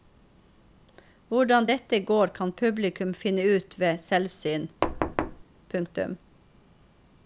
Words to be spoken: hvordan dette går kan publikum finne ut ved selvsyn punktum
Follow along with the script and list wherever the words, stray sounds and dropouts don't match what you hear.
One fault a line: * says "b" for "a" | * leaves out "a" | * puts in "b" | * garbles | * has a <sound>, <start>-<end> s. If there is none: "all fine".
* has a thud, 4.8-5.4 s